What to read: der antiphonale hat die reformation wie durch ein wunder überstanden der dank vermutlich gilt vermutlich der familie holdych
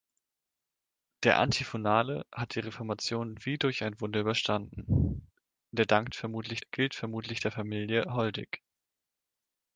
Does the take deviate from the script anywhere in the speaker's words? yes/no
no